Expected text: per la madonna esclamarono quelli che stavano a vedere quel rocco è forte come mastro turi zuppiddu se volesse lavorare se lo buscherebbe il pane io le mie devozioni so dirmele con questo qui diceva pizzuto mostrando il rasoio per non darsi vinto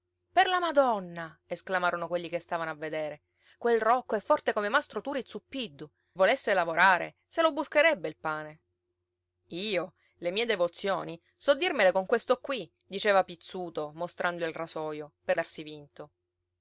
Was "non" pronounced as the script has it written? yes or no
no